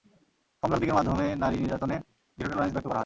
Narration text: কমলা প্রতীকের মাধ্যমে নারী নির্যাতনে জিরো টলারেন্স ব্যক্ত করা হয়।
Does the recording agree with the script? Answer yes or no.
yes